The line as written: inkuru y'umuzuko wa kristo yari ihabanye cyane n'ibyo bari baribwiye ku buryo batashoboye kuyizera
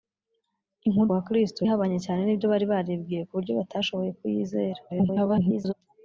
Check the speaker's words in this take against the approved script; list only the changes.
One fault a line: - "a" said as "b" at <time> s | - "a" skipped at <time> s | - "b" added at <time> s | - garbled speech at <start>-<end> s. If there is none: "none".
- "y'umuzuko" skipped at 1.1 s
- "yari" skipped at 1.6 s
- garbled speech at 4.9-5.7 s